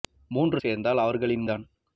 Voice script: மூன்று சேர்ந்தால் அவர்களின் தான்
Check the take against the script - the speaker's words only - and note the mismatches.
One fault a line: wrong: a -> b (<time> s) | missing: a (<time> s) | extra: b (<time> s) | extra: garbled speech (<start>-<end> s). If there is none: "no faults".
no faults